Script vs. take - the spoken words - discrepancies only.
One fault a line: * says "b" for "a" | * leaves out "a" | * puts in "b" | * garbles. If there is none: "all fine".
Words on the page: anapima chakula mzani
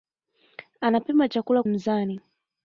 all fine